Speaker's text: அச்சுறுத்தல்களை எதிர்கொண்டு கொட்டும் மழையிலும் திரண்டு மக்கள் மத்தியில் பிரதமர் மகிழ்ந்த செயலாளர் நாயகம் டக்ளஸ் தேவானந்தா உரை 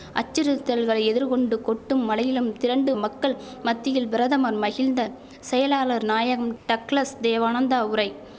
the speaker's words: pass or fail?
pass